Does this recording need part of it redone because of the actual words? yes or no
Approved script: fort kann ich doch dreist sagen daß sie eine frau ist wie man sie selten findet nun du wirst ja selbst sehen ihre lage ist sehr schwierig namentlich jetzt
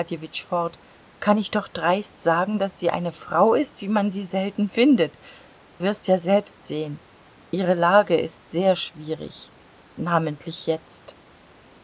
yes